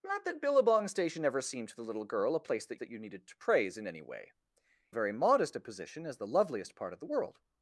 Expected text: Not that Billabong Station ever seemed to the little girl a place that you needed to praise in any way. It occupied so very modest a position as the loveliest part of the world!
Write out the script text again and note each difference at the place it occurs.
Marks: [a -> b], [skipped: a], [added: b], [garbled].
Not that Billabong Station ever seemed to the little girl a place that [added: that] you needed to praise in any way. [skipped: It occupied so] very modest a position as the loveliest part of the world!